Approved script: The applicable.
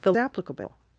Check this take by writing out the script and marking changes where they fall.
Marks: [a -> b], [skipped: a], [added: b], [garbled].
The applicable.